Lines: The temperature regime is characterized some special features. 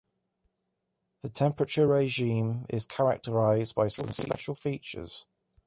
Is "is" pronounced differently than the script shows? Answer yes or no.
no